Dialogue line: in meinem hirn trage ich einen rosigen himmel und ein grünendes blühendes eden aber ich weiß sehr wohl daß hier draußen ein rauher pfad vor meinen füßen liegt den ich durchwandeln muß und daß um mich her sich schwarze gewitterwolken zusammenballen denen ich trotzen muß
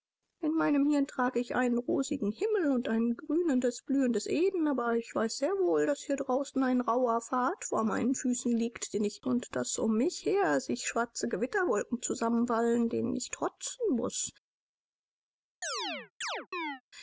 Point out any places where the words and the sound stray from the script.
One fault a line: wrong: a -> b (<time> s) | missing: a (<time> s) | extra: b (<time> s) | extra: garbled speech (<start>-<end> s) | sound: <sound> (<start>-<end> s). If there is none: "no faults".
missing: durchwandeln muß (9.2 s)
sound: chirp (15.6-16.8 s)